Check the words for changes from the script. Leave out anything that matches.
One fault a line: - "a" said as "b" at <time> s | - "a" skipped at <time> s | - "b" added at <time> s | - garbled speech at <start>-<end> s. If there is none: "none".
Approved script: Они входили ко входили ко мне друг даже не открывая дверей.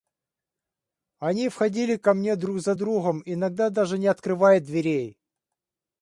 - "входили ко мне друг" said as "мне друг за другом иногда" at 2.1 s